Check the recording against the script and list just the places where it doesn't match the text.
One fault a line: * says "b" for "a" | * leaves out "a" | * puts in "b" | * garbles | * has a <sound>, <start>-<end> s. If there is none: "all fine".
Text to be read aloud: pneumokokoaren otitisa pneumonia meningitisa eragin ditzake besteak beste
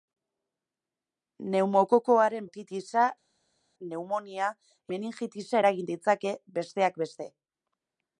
all fine